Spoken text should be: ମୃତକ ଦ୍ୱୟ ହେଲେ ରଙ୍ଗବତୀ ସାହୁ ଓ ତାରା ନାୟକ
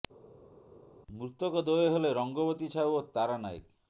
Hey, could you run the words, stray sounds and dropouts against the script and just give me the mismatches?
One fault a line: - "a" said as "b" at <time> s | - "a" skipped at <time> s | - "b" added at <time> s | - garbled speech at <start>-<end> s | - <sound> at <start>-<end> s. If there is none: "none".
none